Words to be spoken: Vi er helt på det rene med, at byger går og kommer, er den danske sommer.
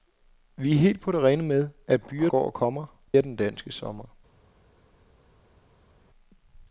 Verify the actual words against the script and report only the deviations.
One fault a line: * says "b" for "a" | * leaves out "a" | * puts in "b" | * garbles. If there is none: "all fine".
all fine